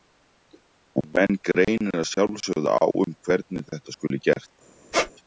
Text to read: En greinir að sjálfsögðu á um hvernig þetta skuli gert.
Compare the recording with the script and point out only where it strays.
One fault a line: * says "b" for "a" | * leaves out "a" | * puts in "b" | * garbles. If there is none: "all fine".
* puts in "menn"